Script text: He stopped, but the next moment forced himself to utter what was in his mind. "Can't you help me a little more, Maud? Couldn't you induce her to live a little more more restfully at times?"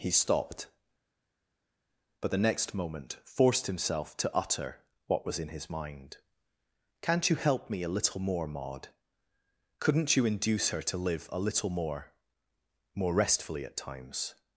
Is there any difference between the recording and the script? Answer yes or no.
no